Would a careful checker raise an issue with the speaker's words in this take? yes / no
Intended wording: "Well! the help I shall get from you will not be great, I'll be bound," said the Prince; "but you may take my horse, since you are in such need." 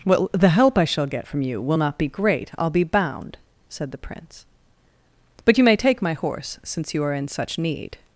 no